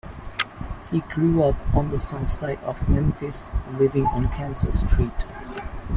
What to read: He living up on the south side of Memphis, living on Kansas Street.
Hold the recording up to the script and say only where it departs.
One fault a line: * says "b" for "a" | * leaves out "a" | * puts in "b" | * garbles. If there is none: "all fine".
* says "grew" for "living"